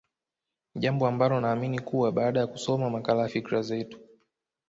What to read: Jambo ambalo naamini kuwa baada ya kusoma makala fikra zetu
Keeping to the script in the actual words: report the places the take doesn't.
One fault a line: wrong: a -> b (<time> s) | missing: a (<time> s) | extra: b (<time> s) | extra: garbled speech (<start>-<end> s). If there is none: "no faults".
no faults